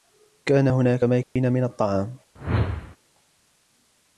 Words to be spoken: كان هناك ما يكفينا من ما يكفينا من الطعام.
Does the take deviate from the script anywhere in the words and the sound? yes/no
yes